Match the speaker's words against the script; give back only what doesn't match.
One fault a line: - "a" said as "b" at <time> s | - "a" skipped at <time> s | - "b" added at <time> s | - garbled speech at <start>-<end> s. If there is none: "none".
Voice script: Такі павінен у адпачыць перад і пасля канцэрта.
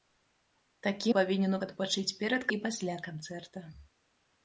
none